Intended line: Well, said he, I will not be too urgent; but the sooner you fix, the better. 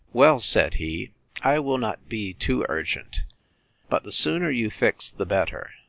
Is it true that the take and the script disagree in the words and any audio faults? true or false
false